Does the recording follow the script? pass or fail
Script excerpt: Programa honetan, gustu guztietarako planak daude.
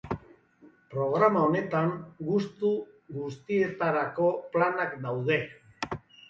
pass